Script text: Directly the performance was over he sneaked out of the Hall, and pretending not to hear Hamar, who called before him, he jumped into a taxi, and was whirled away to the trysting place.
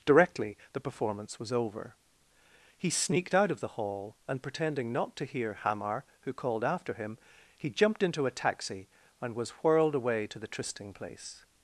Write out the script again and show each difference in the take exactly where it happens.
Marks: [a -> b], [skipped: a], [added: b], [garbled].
Directly the performance was over he sneaked out of the Hall, and pretending not to hear Hamar, who called [before -> after] him, he jumped into a taxi, and was whirled away to the trysting place.